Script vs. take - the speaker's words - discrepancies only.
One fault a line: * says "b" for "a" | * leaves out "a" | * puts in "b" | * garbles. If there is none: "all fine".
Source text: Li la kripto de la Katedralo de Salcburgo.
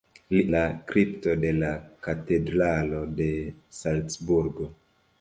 all fine